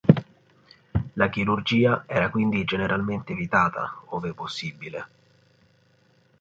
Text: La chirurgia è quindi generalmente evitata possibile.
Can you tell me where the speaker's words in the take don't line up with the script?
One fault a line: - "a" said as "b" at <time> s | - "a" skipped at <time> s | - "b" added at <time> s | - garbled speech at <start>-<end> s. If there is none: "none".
- "è" said as "era" at 2.1 s
- "ove" added at 4.1 s